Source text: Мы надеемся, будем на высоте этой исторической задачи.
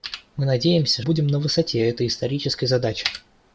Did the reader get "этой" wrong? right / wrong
right